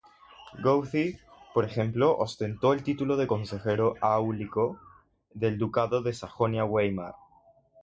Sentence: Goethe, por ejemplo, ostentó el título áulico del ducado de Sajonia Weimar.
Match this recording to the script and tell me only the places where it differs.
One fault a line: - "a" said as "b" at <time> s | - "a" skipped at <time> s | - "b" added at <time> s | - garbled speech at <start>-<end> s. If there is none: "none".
- "de consejero" added at 3.2 s